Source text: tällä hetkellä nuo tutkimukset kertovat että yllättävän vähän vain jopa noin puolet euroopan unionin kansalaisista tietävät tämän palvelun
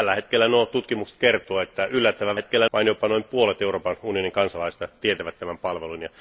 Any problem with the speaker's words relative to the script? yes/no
yes